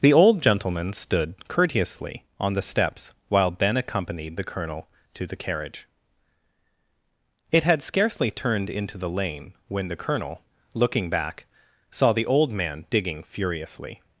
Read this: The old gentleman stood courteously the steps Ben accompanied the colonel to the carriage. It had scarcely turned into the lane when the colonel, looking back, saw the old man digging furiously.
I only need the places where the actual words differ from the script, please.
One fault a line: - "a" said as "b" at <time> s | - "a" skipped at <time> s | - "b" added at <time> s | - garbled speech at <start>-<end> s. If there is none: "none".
- "on" added at 2.4 s
- "while" added at 3.3 s